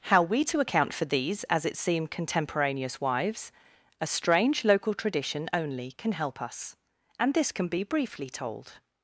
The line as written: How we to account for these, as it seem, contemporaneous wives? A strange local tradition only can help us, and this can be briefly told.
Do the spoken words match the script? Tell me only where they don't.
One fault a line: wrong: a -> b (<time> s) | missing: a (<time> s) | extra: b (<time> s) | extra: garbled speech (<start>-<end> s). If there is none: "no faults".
no faults